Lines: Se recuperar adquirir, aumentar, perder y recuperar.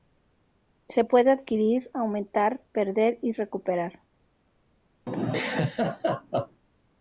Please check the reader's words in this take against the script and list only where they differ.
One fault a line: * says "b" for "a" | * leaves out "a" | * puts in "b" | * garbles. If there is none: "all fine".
* says "puede" for "recuperar"